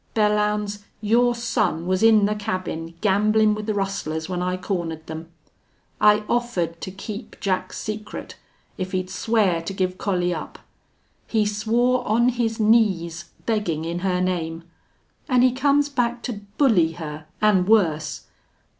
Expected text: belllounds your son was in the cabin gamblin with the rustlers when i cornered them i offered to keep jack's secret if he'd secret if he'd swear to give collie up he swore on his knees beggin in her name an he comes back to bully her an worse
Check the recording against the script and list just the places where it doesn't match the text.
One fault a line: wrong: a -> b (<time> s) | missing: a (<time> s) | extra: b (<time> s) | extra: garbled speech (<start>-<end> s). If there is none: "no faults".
missing: secret if he'd (9.1 s)